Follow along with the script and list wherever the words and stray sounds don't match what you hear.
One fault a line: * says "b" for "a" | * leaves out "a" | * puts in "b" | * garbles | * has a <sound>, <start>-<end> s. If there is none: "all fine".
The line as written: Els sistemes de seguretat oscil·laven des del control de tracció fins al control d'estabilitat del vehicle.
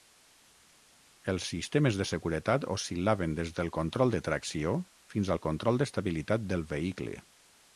all fine